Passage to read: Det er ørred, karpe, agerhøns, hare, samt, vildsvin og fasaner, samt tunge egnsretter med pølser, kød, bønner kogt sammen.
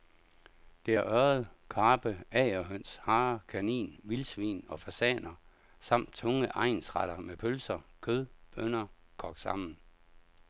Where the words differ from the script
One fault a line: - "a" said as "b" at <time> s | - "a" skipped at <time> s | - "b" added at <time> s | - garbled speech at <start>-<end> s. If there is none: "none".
- "samt" said as "kanin" at 3.5 s